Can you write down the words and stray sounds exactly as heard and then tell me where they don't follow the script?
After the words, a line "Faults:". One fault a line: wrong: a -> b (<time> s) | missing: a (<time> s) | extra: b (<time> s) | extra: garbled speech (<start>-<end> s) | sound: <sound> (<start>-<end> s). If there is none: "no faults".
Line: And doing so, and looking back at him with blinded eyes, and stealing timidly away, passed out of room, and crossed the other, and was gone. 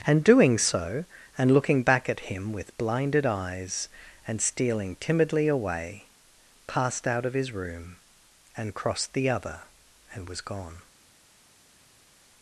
And doing so, and looking back at him with blinded eyes, and stealing timidly away, passed out of his room, and crossed the other, and was gone.
Faults:
extra: his (7.3 s)